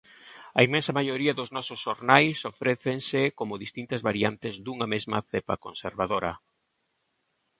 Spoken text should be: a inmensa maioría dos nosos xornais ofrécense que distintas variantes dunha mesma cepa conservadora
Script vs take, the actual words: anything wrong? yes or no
yes